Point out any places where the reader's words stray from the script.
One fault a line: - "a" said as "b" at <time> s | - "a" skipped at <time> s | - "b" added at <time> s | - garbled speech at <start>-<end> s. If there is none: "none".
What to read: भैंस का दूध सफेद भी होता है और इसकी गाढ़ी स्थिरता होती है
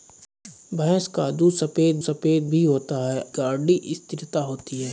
- "सफेद" added at 2.0 s
- "और इसकी" skipped at 3.2 s